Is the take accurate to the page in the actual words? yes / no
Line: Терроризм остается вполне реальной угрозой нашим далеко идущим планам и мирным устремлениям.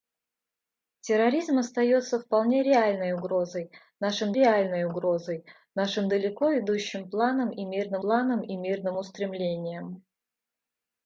no